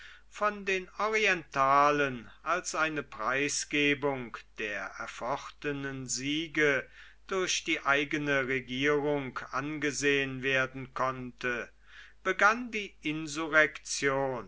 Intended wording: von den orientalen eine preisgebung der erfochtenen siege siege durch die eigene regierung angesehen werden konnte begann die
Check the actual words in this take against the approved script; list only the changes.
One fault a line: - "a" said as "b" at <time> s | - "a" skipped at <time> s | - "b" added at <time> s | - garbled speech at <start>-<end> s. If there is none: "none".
- "als" added at 2.4 s
- "siege" skipped at 6.9 s